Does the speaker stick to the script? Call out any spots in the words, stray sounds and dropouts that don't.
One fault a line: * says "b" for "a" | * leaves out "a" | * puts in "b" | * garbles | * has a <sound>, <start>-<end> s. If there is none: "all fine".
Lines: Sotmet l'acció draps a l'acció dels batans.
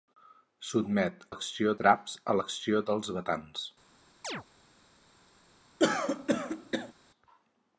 * has a chirp, 4.2-4.4 s
* has a throat clearing, 5.8-6.9 s